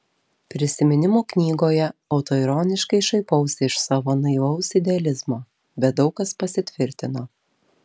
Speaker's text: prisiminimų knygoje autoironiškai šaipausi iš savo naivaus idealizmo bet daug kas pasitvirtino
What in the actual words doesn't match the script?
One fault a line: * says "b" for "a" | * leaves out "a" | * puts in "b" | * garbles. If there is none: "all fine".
all fine